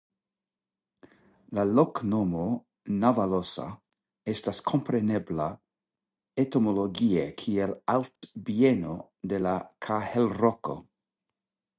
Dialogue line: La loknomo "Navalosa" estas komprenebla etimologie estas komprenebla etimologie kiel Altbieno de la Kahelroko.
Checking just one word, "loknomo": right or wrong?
right